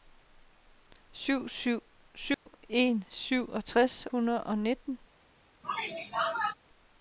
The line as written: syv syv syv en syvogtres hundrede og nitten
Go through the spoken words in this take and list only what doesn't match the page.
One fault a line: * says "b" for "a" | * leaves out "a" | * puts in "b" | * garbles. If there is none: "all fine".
all fine